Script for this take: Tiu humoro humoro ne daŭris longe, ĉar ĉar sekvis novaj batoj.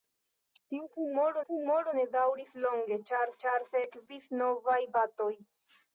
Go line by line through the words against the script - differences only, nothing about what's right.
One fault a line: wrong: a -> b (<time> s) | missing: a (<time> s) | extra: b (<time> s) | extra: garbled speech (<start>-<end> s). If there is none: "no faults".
no faults